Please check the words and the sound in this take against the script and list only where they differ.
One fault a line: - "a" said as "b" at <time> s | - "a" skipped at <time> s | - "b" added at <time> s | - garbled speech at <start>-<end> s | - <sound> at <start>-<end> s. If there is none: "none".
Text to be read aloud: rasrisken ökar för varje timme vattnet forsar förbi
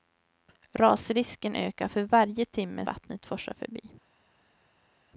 none